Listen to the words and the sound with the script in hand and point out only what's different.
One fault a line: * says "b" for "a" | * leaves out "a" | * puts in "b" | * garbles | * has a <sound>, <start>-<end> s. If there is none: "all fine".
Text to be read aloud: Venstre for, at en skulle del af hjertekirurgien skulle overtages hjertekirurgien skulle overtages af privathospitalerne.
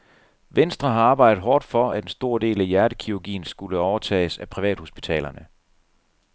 * puts in "har arbejdet hårdt"
* says "stor" for "skulle"
* leaves out "hjertekirurgien skulle overtages"